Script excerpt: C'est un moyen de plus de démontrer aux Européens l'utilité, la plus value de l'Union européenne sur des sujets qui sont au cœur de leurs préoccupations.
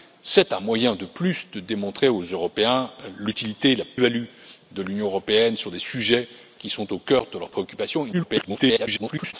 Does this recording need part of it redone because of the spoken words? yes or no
yes